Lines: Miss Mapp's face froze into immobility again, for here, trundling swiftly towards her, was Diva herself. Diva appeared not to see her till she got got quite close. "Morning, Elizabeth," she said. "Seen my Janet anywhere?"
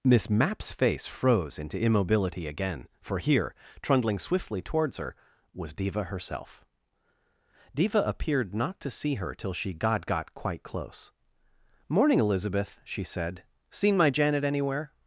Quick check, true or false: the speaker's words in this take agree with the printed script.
true